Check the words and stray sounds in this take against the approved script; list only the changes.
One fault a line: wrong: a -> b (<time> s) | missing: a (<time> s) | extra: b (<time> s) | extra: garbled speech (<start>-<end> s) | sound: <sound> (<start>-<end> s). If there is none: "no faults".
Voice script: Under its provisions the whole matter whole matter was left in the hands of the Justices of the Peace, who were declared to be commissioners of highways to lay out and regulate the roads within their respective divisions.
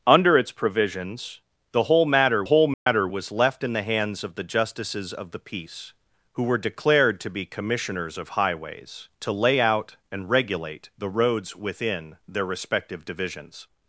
sound: dropout (2.7-2.9 s)